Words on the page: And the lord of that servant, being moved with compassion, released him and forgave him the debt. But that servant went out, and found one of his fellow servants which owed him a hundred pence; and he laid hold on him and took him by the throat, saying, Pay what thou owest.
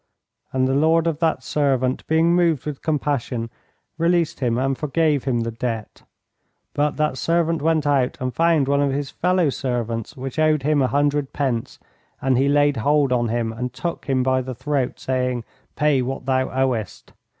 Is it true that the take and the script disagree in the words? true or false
false